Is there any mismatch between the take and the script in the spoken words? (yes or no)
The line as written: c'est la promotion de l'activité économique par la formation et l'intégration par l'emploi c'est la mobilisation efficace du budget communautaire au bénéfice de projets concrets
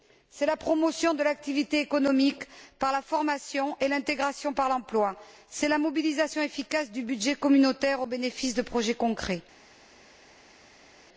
no